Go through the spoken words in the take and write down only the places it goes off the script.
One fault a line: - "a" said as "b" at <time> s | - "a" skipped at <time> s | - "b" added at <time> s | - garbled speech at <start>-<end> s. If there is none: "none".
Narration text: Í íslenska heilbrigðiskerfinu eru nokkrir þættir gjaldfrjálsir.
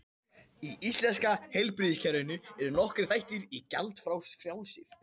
none